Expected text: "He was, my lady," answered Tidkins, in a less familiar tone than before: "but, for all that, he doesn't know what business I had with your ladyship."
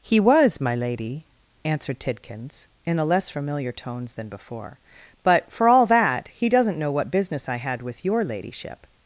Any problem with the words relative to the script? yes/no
yes